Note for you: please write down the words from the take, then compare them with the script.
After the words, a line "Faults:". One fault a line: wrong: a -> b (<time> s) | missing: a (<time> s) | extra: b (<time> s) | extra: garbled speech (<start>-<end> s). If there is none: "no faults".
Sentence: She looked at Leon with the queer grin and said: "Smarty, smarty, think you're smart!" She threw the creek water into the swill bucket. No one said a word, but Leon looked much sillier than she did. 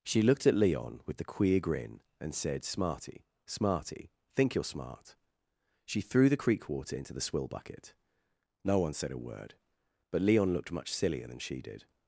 She looked at Leon with the queer grin and said: "Smarty, smarty, think you're smart!" She threw the creek water into the swill bucket. No one said a word, but Leon looked much sillier than she did.
Faults:
no faults